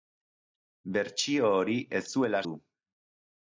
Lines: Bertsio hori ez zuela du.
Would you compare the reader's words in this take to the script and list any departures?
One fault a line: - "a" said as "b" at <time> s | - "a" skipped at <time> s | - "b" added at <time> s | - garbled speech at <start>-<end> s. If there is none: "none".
none